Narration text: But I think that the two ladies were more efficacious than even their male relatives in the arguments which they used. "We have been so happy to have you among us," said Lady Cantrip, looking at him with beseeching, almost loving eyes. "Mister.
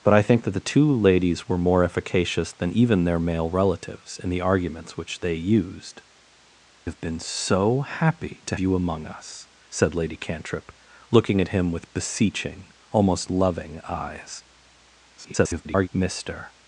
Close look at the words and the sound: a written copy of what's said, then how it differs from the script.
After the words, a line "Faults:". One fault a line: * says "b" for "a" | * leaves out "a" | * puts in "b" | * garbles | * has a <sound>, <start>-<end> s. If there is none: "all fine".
But I think that the two ladies were more efficacious than even their male relatives in the arguments which they used. "Have been so happy to you among us," said Lady Cantrip, looking at him with beseeching, almost loving eyes. [garbled] "Mister.
Faults:
* leaves out "We"
* leaves out "have"
* garbles